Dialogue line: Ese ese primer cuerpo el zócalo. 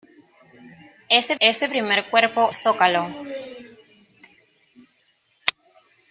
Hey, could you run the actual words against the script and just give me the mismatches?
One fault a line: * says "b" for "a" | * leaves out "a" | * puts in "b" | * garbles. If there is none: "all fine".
all fine